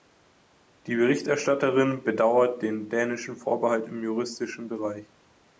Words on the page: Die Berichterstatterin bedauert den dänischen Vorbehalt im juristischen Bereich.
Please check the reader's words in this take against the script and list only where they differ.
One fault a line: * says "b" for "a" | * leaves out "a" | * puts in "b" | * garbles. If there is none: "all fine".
all fine